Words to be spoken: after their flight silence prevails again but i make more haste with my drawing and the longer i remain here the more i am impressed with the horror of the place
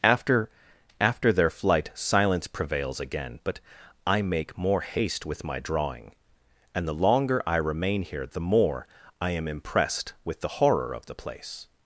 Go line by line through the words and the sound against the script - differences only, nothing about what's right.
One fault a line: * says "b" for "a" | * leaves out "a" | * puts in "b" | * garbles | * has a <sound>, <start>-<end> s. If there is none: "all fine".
* puts in "after"